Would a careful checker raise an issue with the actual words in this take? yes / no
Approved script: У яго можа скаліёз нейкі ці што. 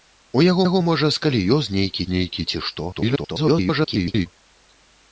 yes